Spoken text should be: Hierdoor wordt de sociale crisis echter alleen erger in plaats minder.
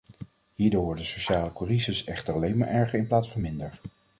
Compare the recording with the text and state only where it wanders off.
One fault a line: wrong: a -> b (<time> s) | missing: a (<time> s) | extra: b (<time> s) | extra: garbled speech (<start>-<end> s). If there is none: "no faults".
extra: maar (2.6 s)
extra: van (3.3 s)